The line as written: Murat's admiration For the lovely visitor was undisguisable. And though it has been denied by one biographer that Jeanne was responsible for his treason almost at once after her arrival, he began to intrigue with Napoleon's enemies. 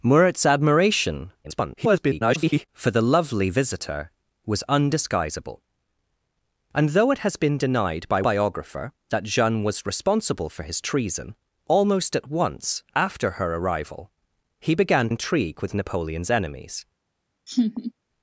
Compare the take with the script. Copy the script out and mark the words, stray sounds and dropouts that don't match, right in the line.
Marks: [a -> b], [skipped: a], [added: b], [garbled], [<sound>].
Murat's admiration [garbled] For the lovely visitor was undisguisable. And though it has been denied by [skipped: one] biographer that Jeanne was responsible for his treason almost at once after her arrival, he began [skipped: to] intrigue with Napoleon's enemies. [laugh]